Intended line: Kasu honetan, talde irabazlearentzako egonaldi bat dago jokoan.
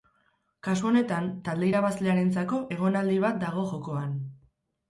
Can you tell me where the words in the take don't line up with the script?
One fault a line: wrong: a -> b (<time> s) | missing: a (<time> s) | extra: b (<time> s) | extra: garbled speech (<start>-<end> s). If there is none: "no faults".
no faults